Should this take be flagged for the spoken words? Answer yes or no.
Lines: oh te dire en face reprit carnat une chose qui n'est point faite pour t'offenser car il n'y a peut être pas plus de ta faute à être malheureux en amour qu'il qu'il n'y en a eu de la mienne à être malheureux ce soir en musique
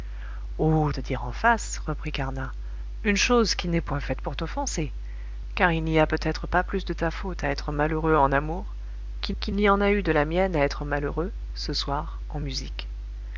no